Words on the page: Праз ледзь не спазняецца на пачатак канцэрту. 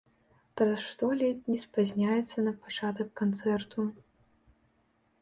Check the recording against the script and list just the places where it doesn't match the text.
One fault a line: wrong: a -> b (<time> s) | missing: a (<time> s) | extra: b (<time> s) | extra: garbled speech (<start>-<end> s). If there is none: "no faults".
extra: што (0.9 s)